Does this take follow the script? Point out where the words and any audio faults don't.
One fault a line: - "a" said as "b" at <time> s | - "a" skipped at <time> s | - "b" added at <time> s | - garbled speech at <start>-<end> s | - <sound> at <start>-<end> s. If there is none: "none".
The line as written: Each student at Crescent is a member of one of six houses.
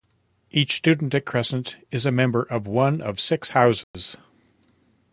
- dropout at 3.8-3.9 s